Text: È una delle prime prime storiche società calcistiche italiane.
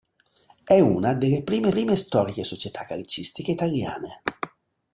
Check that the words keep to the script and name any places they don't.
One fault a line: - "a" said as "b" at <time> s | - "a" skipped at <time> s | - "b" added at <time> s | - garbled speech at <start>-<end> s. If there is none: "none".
none